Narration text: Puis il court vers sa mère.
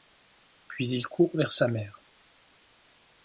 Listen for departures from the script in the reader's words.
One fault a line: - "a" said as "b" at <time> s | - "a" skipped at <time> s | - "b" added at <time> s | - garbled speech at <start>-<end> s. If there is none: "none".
none